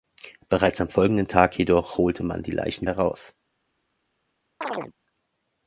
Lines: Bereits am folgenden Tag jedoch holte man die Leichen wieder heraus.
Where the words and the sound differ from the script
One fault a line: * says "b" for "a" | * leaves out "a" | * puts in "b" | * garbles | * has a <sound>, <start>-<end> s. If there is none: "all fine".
* leaves out "wieder"
* has a chirp, 4.6-4.9 s